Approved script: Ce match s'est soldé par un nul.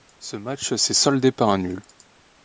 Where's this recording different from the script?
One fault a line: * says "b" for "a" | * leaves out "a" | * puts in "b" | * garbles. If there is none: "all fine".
all fine